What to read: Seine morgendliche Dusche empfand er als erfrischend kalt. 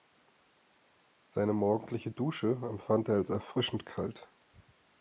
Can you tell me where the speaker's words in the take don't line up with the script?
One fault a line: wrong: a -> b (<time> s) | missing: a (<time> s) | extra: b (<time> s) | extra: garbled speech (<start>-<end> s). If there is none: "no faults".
no faults